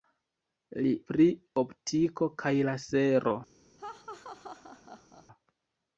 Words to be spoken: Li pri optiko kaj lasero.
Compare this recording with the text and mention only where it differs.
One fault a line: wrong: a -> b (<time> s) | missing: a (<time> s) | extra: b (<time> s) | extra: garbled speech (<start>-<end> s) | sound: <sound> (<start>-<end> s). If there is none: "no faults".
sound: laugh (3.8-5.3 s)